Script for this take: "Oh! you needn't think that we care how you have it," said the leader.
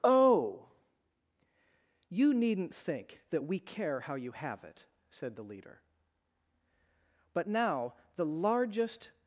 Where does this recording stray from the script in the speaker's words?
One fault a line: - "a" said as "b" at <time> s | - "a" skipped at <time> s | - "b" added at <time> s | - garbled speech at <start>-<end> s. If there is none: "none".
- "But now the largest" added at 7.3 s